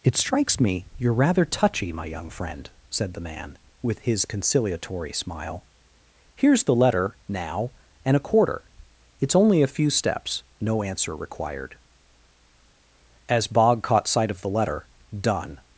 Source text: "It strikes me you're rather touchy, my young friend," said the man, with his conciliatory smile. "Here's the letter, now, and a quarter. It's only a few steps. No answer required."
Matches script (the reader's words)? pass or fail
fail